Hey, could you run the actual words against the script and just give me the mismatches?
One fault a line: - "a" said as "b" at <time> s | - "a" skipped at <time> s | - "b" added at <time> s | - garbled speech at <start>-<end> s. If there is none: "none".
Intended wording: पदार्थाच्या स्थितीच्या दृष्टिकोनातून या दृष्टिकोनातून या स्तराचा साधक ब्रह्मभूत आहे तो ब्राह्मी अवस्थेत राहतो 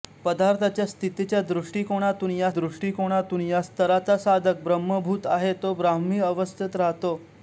none